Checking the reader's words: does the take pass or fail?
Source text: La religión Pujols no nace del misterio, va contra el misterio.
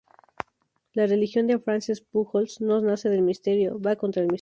fail